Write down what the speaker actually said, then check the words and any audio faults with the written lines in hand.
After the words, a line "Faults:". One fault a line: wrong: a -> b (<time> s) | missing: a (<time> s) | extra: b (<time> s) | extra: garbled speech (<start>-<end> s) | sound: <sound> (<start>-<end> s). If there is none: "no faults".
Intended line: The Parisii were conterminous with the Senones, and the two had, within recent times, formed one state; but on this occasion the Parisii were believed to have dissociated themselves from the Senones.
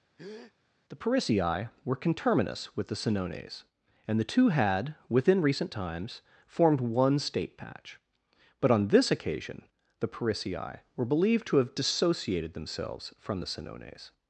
The Parisii were conterminous with the Senones, and the two had, within recent times, formed one state; patch but on this occasion the Parisii were believed to have dissociated themselves from the Senones.
Faults:
sound: breath (0.2-0.5 s)
extra: patch (7.6 s)